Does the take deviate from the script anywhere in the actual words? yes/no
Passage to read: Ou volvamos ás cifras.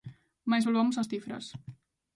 yes